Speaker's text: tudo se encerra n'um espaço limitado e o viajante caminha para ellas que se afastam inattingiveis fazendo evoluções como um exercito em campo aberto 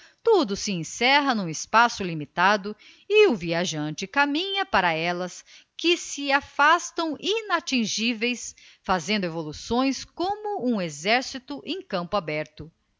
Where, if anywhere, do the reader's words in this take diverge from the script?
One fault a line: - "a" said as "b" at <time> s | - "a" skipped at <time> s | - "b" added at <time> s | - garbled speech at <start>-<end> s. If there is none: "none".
none